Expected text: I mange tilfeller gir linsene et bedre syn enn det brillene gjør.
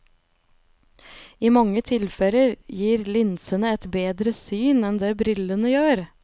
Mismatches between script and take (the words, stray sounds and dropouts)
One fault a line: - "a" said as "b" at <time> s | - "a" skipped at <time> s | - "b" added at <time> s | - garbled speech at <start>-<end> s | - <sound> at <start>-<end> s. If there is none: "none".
none